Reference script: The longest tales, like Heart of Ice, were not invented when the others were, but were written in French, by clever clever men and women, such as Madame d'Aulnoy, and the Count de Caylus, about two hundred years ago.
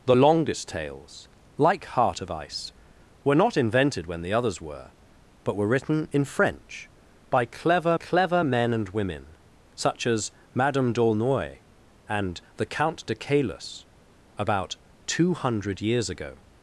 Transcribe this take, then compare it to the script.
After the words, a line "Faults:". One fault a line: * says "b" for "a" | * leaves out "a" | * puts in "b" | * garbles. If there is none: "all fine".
The longest tales, like Heart of Ice, were not invented when the others were, but were written in French, by clever clever men and women, such as Madame d'Aulnoy, and the Count de Caylus, about two hundred years ago.
Faults:
all fine